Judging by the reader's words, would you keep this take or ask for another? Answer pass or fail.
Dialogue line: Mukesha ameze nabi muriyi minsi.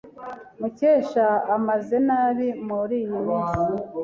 pass